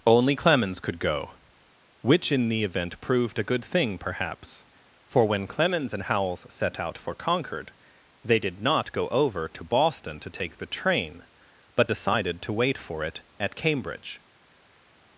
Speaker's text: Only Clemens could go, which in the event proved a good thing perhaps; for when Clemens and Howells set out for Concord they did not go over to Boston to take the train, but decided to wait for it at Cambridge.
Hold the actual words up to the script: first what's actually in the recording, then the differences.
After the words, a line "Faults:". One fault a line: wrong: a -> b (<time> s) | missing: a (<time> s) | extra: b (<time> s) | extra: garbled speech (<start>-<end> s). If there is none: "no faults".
Only Clemens could go, which in the event proved a good thing perhaps; for when Clemens and Howells set out for Concord they did not go over to Boston to take the train, but decided to wait for it at Cambridge.
Faults:
no faults